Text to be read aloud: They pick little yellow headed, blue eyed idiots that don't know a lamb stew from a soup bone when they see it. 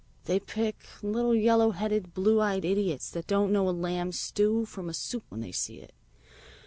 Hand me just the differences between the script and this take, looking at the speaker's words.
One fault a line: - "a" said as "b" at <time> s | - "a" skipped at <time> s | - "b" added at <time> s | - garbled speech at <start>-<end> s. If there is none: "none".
- "bone" skipped at 5.2 s